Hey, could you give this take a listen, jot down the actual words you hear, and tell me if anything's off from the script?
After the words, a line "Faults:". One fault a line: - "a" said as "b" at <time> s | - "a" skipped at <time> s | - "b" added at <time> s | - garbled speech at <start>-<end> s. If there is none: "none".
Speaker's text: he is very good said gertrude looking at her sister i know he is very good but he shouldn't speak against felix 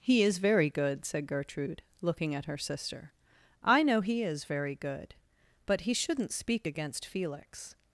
he is very good said gertrude looking at her sister i know he is very good but he shouldn't speak against felix
Faults:
none